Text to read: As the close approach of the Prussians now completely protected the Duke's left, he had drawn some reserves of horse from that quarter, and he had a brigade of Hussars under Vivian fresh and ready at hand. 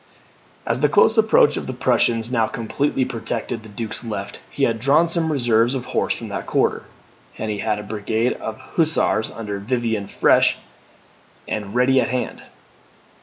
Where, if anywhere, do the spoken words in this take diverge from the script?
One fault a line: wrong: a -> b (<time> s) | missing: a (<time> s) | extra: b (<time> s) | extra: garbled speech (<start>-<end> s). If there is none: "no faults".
no faults